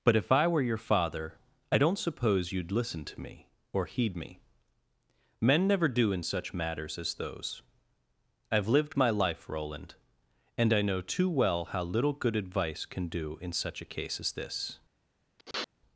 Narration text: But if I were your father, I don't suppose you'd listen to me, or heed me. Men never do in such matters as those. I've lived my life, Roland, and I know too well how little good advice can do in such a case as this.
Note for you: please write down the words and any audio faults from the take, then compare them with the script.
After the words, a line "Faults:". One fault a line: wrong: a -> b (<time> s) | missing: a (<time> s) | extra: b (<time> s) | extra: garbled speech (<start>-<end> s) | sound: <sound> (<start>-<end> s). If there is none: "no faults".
But if I were your father, I don't suppose you'd listen to me, or heed me. Men never do in such matters as those. I've lived my life, Roland, and I know too well how little good advice can do in such a case as this.
Faults:
sound: sniff (15.4-15.7 s)